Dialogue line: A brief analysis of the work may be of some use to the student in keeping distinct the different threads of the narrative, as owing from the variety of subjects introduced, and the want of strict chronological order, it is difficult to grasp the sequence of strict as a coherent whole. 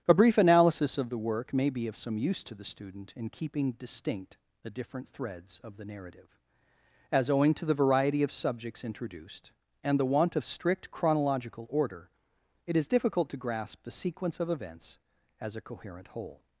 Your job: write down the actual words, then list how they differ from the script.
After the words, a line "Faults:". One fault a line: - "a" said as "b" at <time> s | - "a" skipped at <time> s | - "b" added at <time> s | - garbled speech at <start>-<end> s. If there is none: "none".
A brief analysis of the work may be of some use to the student in keeping distinct the different threads of the narrative, as owing to the variety of subjects introduced, and the want of strict chronological order, it is difficult to grasp the sequence of events as a coherent whole.
Faults:
- "from" said as "to" at 7.5 s
- "strict" said as "events" at 14.5 s